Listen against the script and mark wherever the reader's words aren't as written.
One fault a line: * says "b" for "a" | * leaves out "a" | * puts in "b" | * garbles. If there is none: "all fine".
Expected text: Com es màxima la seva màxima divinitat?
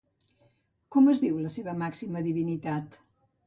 * says "diu" for "màxima"